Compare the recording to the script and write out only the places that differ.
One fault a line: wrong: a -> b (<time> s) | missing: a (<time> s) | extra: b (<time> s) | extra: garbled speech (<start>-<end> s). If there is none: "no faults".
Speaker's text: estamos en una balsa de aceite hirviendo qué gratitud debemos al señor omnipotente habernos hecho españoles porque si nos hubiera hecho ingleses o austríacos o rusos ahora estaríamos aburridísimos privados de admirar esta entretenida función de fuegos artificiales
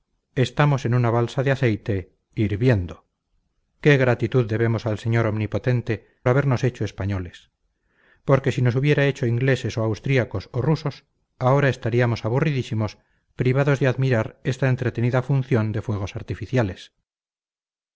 no faults